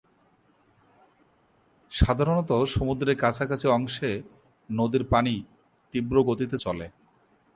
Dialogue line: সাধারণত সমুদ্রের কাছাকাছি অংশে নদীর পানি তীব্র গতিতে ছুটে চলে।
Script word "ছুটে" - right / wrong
wrong